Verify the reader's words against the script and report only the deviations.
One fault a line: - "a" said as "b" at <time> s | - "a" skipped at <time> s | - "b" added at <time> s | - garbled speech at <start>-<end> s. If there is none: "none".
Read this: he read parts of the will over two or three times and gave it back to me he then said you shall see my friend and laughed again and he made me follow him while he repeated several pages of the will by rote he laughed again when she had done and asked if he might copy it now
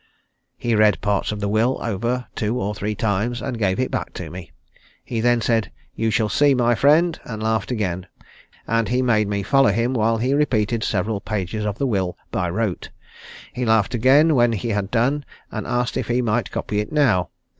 - "she" said as "he" at 14.5 s